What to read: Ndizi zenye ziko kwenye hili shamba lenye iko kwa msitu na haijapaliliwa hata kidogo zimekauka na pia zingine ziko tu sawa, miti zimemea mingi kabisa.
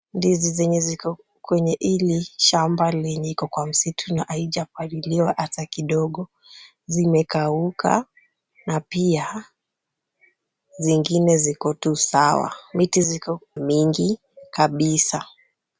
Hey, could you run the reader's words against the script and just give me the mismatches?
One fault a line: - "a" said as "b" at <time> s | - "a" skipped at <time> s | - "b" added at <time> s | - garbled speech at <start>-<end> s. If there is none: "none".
- "zimemea" said as "ziko" at 13.0 s